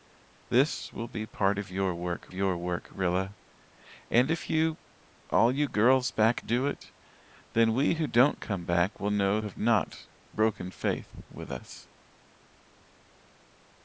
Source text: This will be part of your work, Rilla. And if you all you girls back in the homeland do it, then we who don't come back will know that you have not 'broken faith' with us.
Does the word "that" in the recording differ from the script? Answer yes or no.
yes